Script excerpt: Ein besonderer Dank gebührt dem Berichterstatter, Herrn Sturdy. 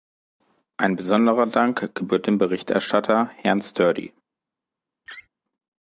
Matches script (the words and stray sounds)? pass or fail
fail